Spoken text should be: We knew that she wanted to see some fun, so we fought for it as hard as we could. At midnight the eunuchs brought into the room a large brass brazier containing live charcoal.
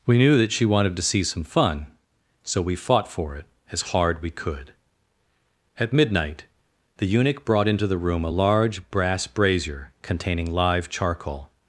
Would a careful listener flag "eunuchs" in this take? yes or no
yes